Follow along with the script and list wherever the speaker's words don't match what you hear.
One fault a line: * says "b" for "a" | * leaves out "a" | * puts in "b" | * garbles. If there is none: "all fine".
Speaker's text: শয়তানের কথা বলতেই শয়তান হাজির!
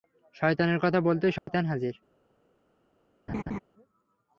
all fine